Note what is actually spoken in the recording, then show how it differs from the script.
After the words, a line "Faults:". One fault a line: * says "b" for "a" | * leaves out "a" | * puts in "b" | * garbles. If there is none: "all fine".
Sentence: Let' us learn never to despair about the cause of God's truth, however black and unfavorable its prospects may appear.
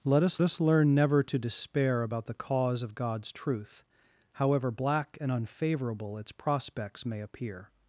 Let' us us learn never to despair about the cause of God's truth, however black and unfavorable its prospects may appear.
Faults:
* puts in "us"